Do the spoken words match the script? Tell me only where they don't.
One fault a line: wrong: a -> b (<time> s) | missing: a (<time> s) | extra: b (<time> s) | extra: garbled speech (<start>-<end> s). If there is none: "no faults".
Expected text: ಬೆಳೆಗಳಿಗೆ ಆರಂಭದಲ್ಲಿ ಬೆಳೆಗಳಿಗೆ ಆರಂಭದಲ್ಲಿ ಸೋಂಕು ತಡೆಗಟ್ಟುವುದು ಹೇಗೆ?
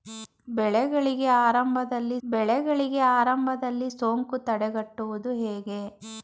no faults